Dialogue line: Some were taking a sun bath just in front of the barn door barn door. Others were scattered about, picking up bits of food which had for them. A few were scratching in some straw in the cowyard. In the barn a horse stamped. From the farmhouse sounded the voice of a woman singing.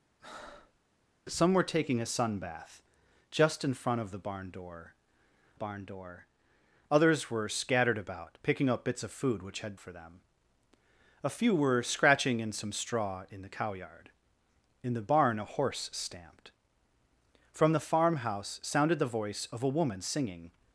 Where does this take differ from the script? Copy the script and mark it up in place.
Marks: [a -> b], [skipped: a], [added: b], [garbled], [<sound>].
[breath] Some were taking a sun bath just in front of the barn door barn door. Others were scattered about, picking up bits of food which had for them. A few were scratching in some straw in the cowyard. In the barn a horse stamped. From the farmhouse sounded the voice of a woman singing.